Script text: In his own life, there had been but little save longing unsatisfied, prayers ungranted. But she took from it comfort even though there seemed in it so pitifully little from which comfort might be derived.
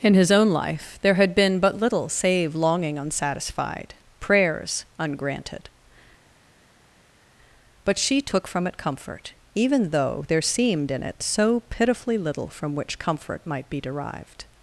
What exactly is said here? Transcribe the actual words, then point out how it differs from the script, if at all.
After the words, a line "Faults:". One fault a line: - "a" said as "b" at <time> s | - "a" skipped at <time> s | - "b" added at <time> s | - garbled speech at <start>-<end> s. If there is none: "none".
In his own life, there had been but little save longing unsatisfied, prayers ungranted. But she took from it comfort even though there seemed in it so pitifully little from which comfort might be derived.
Faults:
none